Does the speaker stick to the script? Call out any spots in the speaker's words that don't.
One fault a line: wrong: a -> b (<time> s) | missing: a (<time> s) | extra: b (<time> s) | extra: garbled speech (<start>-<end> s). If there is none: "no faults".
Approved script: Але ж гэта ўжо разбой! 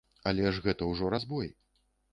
no faults